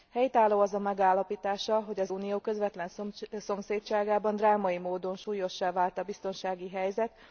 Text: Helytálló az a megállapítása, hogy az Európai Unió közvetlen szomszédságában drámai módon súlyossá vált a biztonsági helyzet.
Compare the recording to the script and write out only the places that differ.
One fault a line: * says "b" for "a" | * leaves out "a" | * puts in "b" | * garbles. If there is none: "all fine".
* leaves out "Európai"